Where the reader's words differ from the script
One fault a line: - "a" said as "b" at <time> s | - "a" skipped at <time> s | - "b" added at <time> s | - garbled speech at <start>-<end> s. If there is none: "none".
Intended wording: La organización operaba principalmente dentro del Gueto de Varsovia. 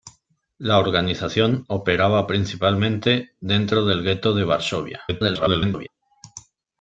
- garbled speech at 5.1-5.9 s